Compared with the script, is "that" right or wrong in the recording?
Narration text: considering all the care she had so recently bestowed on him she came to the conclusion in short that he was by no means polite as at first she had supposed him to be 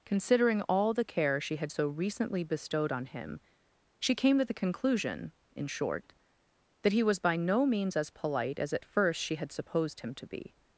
right